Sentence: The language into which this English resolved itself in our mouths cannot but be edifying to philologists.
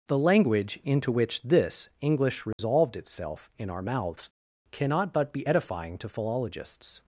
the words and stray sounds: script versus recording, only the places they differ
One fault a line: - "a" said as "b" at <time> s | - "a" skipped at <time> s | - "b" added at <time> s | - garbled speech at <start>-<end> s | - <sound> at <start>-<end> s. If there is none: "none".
- dropout at 2.5-2.6 s